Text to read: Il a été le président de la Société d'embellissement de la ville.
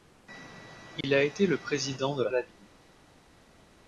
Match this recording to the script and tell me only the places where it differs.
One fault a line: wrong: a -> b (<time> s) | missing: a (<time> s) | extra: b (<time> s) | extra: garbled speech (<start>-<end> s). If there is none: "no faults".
missing: Société d'embellissement de (2.3 s)